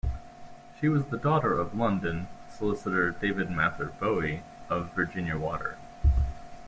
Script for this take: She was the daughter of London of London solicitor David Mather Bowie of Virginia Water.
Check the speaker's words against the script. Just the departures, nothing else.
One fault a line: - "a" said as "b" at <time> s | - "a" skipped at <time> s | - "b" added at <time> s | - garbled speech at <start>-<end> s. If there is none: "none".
- "of London" skipped at 2.3 s